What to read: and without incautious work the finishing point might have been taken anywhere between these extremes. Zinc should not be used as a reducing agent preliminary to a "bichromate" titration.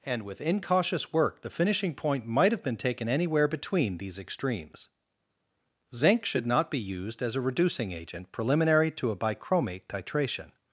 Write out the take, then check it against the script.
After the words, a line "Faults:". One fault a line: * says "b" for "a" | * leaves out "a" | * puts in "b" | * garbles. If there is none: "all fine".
and with incautious work the finishing point might have been taken anywhere between these extremes. Zinc should not be used as a reducing agent preliminary to a "bichromate" titration.
Faults:
* says "with" for "without"